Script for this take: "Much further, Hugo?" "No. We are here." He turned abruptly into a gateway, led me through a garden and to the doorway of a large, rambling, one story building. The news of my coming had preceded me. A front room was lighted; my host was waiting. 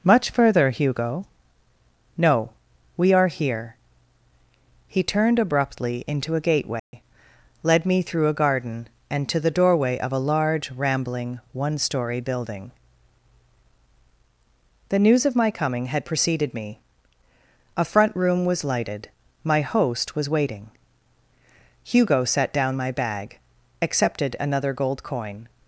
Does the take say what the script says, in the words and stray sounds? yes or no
no